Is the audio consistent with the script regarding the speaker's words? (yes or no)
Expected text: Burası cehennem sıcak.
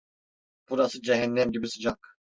no